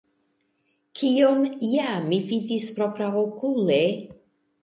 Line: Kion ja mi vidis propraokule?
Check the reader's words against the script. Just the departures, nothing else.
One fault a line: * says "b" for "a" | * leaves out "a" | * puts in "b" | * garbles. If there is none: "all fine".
all fine